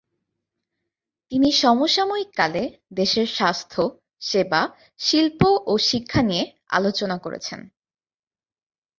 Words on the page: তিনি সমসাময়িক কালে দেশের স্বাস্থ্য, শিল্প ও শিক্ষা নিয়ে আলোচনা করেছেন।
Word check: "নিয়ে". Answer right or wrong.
right